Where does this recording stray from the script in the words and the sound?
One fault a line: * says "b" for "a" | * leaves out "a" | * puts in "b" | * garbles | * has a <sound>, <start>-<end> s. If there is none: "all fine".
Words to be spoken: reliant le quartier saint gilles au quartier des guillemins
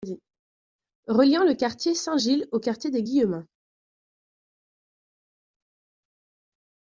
all fine